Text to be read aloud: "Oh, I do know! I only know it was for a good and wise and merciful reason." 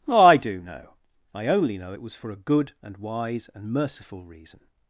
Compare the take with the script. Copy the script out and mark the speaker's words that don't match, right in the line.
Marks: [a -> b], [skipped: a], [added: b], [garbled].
"Oh, I do know! I only know it was for a good and wise and merciful reason."